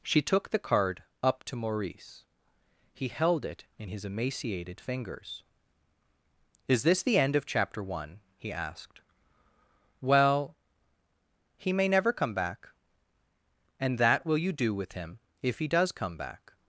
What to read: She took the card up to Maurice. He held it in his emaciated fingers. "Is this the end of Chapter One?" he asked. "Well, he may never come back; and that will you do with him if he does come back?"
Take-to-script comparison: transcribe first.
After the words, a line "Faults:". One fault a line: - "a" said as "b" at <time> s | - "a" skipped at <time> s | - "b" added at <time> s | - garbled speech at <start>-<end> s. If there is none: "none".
She took the card up to Maurice. He held it in his emaciated fingers. "Is this the end of Chapter One?" he asked. "Well, he may never come back; and that will you do with him if he does come back?"
Faults:
none